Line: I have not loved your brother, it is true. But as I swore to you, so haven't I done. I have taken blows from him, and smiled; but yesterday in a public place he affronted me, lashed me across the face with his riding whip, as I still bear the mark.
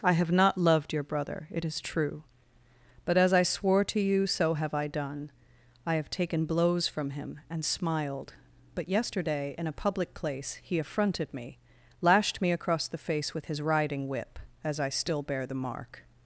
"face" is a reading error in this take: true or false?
false